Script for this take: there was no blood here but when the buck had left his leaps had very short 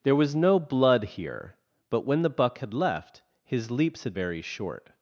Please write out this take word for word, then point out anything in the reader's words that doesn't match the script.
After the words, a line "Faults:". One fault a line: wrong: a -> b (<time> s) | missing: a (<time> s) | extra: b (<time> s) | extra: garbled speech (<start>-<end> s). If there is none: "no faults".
there was no blood here but when the buck had left his leaps had very short
Faults:
no faults